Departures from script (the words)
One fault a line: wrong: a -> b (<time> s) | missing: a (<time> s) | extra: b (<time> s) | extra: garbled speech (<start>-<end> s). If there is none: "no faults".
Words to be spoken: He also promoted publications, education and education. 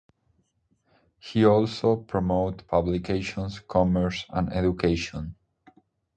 wrong: education -> commerce (3.6 s)